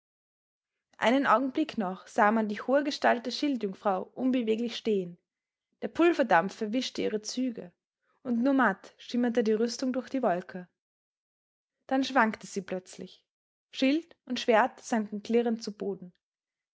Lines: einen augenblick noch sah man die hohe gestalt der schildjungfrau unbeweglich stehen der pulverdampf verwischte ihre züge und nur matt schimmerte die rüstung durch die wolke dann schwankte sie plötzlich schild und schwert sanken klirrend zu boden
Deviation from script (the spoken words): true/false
false